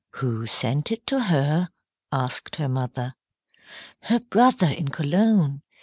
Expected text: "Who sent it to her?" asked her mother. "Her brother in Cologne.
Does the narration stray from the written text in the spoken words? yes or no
no